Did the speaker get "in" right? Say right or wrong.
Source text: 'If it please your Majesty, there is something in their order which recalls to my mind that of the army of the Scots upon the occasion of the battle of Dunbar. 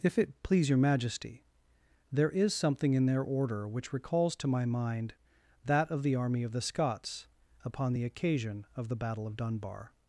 right